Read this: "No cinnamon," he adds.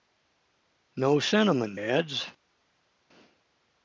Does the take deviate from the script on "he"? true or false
true